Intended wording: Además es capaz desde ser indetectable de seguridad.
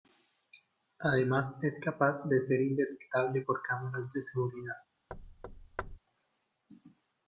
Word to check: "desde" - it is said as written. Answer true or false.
false